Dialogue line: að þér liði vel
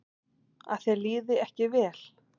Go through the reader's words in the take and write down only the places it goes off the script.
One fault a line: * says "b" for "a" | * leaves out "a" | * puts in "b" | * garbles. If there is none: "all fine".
* puts in "ekki"